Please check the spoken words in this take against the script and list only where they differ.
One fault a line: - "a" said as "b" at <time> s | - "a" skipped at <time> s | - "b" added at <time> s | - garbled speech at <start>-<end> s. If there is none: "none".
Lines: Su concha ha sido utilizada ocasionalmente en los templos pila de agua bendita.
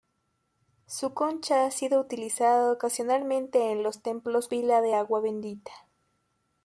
none